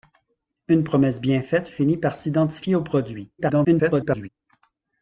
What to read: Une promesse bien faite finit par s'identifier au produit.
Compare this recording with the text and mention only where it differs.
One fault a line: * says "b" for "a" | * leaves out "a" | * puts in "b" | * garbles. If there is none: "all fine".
* garbles